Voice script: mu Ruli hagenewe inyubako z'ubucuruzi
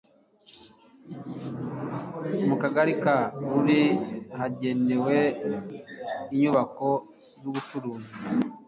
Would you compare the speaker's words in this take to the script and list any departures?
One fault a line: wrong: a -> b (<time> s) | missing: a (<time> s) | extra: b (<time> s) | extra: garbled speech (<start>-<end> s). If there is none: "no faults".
extra: Kagari ka (2.6 s)